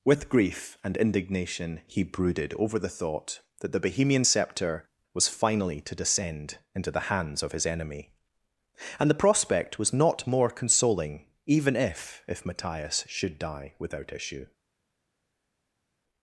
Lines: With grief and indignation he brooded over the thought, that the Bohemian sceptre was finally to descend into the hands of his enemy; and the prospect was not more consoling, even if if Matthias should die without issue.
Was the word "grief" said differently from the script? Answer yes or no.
no